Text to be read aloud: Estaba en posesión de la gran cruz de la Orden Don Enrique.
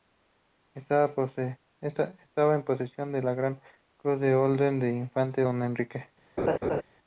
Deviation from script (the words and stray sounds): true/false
true